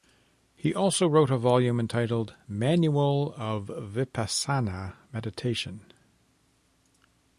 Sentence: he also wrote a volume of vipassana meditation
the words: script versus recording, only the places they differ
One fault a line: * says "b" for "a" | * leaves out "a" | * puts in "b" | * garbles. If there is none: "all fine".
* puts in "entitled manual"